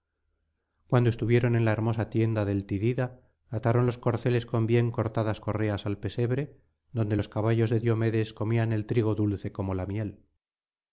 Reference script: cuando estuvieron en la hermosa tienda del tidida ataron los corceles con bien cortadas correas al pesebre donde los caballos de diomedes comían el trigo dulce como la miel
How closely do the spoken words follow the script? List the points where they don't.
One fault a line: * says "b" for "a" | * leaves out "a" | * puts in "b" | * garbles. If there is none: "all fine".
all fine